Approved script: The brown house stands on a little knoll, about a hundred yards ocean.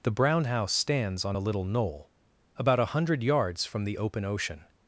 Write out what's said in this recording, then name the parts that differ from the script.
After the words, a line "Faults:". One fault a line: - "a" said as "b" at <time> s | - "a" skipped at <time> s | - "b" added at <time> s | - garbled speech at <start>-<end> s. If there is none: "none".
The brown house stands on a little knoll, about a hundred yards from the open ocean.
Faults:
- "from the open" added at 3.6 s